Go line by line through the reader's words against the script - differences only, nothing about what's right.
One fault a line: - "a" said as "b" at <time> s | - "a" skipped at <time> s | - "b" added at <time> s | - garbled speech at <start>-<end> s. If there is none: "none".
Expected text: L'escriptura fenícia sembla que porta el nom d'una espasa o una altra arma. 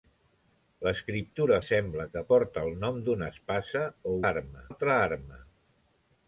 - "fenícia" skipped at 1.6 s
- "una" said as "arma" at 4.3 s